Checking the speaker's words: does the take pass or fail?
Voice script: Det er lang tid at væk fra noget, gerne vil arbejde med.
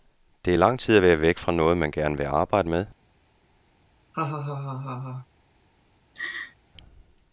fail